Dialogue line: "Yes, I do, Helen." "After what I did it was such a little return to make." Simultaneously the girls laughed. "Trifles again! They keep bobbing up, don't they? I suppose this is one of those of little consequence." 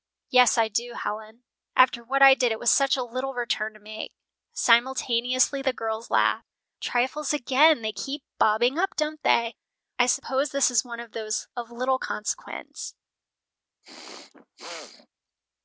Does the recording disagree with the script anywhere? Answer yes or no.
no